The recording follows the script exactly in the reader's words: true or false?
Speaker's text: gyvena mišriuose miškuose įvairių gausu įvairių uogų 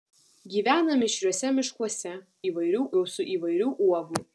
true